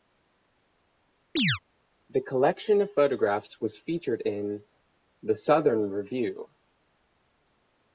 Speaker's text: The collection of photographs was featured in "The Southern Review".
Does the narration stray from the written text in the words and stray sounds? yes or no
yes